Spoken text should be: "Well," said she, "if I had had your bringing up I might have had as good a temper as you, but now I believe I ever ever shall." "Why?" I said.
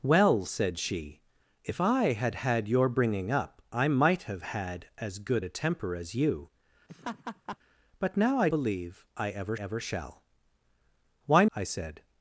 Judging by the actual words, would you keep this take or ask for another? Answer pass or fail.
pass